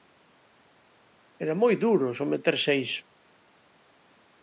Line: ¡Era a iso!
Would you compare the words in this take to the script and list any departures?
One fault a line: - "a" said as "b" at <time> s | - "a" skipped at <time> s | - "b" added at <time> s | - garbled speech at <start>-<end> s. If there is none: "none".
- "moi duro someterse" added at 1.6 s